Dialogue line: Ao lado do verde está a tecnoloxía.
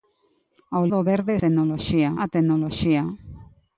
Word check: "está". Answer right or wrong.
wrong